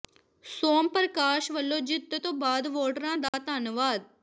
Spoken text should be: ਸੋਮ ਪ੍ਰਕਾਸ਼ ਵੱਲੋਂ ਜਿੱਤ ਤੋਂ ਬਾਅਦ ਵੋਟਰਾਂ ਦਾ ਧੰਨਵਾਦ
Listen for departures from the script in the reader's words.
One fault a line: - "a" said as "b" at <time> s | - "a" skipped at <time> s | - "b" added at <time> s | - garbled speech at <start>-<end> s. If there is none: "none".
none